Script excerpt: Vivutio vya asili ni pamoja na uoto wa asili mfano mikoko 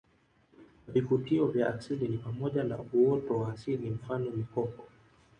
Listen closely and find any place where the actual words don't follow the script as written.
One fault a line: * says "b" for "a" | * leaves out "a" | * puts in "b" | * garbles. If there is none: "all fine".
all fine